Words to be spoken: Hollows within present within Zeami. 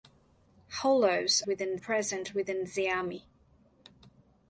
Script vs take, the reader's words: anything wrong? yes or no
no